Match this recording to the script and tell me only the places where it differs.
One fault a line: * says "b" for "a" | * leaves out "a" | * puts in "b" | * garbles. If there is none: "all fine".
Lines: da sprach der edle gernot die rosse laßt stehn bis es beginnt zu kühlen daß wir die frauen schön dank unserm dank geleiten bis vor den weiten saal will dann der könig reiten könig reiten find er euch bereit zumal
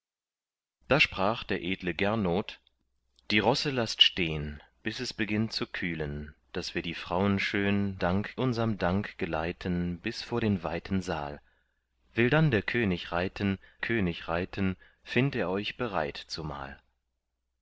all fine